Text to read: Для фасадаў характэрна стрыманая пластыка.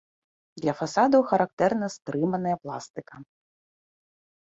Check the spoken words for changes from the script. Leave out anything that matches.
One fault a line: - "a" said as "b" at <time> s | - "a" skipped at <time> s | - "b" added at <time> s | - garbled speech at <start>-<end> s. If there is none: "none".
none